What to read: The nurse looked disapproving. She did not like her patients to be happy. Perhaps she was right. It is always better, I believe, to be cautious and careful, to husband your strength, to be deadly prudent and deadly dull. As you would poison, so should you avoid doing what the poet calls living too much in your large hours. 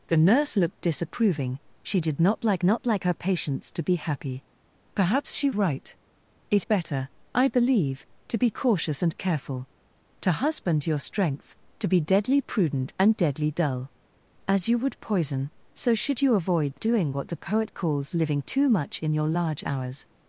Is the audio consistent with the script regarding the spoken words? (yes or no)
no